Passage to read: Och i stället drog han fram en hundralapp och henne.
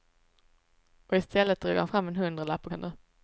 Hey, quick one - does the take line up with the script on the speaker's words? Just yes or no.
yes